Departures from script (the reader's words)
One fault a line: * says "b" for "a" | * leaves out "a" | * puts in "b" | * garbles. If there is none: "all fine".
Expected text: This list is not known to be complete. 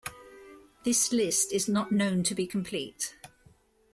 all fine